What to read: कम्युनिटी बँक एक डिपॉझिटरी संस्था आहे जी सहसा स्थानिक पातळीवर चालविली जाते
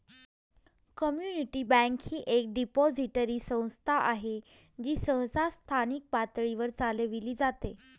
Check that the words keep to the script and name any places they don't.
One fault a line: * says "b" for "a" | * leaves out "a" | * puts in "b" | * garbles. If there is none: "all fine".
* puts in "ही"